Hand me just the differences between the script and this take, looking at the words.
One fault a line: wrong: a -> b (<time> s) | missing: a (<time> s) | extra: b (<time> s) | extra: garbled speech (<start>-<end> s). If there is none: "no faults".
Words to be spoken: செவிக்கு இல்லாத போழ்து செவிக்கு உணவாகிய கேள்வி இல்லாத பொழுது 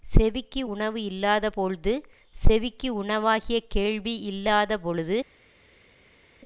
extra: உணவு (0.7 s)